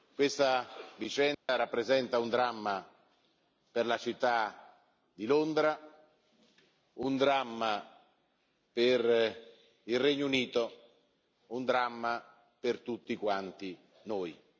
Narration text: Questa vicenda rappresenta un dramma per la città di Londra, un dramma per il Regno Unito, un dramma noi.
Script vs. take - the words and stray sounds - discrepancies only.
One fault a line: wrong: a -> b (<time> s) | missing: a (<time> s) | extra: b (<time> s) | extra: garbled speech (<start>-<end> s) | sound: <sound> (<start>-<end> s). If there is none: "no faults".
sound: dropout (1.3-1.5 s)
extra: per tutti quanti (12.6 s)